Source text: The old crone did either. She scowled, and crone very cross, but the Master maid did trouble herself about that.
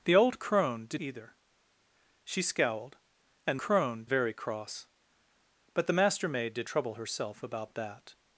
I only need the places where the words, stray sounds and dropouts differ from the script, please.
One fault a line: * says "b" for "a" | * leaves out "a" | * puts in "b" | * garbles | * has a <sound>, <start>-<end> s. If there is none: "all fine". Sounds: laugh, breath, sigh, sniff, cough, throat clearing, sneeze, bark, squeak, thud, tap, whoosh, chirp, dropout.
all fine